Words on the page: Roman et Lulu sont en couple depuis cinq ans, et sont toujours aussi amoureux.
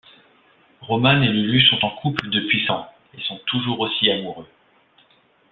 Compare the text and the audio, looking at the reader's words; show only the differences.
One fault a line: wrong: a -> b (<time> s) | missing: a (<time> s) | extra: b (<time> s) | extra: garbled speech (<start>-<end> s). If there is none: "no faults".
missing: cinq (2.6 s)